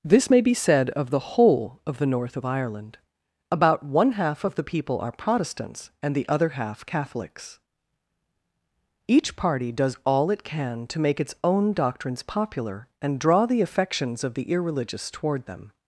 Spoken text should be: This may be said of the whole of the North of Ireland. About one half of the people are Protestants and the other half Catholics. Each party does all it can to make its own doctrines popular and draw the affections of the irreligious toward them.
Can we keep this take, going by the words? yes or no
yes